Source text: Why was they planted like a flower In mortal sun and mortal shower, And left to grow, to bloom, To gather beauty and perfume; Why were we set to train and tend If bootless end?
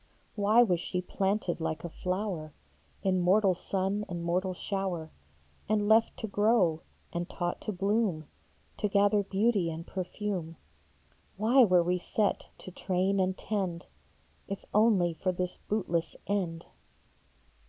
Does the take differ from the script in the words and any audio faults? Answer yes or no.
yes